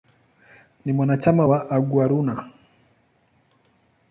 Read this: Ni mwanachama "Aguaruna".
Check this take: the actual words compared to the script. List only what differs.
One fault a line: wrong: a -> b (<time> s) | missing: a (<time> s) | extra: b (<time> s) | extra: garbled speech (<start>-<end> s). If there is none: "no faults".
extra: wa (1.4 s)